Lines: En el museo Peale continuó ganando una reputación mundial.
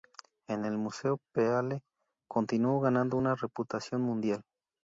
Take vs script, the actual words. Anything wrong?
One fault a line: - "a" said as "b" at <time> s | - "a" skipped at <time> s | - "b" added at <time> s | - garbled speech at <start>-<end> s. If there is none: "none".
none